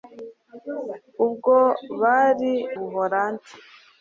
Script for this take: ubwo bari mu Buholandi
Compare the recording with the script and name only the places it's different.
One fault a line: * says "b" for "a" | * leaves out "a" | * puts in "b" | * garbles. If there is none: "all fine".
* leaves out "mu"